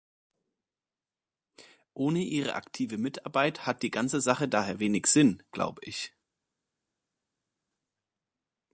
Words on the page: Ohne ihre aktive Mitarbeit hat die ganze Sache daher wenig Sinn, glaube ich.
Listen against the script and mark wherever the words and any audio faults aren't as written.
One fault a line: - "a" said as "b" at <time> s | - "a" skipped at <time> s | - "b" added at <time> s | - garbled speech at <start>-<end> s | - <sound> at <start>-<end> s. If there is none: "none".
none